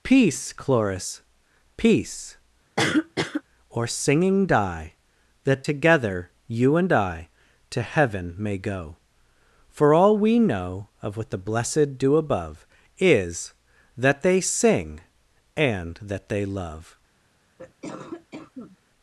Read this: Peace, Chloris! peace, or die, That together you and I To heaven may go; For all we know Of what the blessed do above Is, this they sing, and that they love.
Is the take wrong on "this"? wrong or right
wrong